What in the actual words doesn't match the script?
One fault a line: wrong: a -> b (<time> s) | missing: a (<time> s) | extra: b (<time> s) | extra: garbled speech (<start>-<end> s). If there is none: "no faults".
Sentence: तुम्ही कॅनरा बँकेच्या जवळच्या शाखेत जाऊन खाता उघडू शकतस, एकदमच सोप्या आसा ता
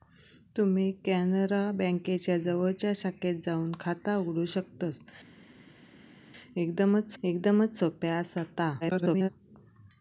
extra: एकदमच (7.2 s)
extra: garbled speech (8.8-9.3 s)